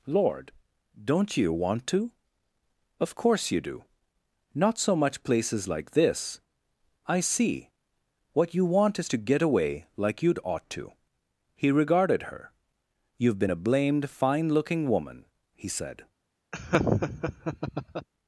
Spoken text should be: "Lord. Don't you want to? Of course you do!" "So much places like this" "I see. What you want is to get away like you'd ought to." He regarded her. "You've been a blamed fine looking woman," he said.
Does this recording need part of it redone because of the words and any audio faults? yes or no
yes